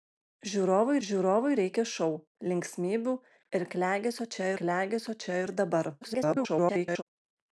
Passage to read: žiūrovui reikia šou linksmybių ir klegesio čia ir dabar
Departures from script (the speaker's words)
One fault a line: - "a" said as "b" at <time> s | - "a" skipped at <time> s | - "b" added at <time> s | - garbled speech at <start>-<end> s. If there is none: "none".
- "žiūrovui" added at 1.1 s
- "klegesio čia" added at 4.6 s
- garbled speech at 6.0-7.0 s